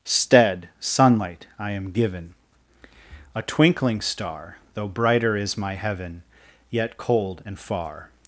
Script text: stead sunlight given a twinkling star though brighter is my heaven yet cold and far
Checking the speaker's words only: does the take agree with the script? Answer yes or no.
no